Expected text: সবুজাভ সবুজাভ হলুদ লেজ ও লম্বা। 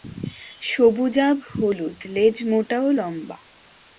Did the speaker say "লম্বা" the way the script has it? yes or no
yes